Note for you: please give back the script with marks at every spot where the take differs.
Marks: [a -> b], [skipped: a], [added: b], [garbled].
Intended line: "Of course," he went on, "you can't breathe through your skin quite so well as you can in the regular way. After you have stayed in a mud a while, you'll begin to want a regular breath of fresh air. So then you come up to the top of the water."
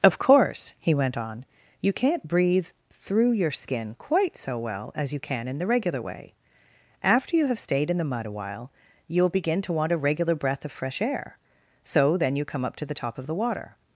"Of course," he went on, "you can't breathe through your skin quite so well as you can in the regular way. After you have stayed in [a -> the] mud a while, you'll begin to want a regular breath of fresh air. So then you come up to the top of the water."